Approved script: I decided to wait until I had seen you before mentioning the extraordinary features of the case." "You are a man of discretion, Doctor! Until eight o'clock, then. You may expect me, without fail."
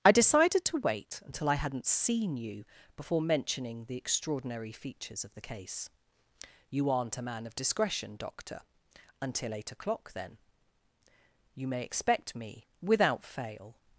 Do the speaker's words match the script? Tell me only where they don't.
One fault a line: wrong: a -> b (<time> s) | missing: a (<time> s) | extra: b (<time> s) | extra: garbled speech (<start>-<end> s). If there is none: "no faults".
wrong: had -> hadn't (1.6 s)
wrong: are -> aren't (6.9 s)